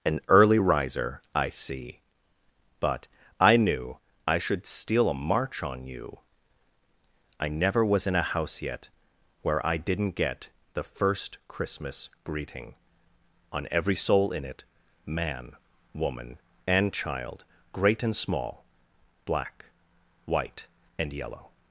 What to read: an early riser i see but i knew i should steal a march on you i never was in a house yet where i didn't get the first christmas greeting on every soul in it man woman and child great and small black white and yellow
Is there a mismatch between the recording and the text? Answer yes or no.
no